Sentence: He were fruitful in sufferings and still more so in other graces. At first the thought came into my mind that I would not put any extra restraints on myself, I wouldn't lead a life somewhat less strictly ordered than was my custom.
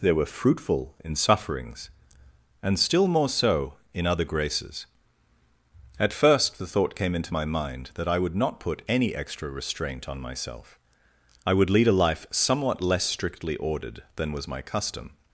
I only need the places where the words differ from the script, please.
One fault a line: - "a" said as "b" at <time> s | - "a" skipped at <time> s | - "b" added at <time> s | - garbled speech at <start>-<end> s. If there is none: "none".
- "He" said as "They" at 0.0 s
- "restraints" said as "restraint" at 9.5 s
- "wouldn't" said as "would" at 11.5 s